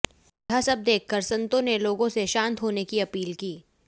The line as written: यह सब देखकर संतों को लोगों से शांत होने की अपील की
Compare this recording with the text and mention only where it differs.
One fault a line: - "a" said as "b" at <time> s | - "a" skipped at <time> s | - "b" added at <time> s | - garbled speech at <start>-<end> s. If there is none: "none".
- "को" said as "ने" at 1.6 s